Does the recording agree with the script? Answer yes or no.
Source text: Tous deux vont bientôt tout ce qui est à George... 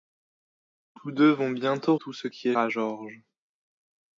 yes